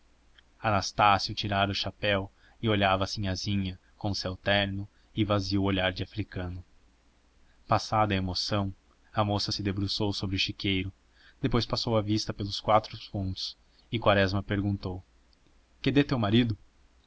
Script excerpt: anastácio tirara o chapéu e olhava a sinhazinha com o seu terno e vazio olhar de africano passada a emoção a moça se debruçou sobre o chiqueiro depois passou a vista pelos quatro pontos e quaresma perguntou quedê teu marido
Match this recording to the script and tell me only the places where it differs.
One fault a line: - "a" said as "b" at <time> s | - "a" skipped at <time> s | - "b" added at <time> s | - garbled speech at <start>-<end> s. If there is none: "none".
none